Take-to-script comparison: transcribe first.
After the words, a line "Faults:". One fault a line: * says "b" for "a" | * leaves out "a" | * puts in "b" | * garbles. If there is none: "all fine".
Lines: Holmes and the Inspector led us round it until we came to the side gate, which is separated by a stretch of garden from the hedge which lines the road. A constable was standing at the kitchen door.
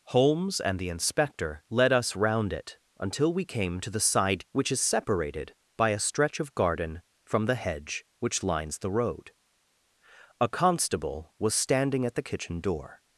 Holmes and the Inspector led us round it until we came to the side which is separated by a stretch of garden from the hedge which lines the road. A constable was standing at the kitchen door.
Faults:
* leaves out "gate"